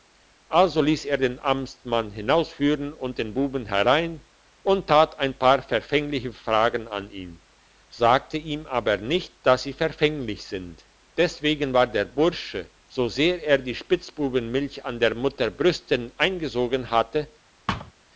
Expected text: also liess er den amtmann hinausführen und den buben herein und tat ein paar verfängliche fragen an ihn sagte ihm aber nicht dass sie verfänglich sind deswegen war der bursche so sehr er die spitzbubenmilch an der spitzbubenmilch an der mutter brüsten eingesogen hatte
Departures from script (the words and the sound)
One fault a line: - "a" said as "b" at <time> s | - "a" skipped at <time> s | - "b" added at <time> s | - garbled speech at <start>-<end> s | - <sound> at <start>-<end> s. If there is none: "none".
- "spitzbubenmilch an der" skipped at 15.1 s
- thud at 17.7-17.9 s